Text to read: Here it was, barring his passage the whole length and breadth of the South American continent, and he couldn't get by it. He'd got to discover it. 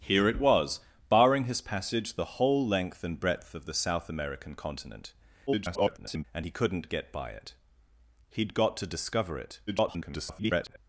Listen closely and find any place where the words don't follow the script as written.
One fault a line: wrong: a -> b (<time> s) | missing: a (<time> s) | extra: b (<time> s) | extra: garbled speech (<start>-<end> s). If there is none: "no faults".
extra: garbled speech (5.5-6.2 s)
extra: garbled speech (9.7-10.8 s)